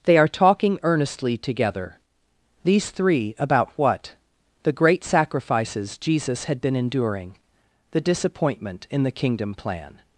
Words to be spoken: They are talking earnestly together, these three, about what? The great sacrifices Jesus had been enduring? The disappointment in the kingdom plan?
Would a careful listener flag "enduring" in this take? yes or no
no